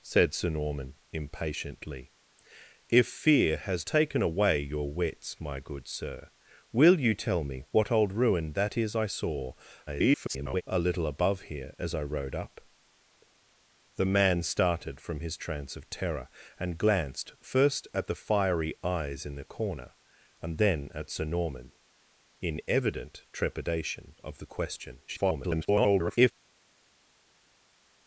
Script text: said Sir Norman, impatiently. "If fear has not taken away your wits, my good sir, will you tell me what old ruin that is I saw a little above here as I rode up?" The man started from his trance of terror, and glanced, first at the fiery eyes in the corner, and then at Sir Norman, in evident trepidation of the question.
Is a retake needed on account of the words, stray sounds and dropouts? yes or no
yes